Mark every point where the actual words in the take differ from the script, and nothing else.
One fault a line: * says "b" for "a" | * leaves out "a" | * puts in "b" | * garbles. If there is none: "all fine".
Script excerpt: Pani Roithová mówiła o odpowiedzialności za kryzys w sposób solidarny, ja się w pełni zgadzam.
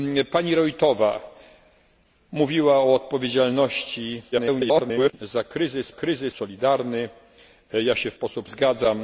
* garbles
* says "kryzys" for "sposób"
* says "sposób" for "pełni"